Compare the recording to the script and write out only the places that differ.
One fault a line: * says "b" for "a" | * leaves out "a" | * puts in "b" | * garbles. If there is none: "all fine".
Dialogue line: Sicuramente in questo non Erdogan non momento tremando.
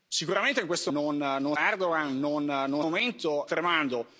all fine